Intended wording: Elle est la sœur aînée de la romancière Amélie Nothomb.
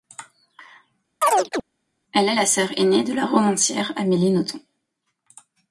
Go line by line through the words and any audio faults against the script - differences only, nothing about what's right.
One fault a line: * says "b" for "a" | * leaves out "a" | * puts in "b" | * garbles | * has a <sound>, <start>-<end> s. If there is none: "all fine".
* has a chirp, 1.2-1.6 s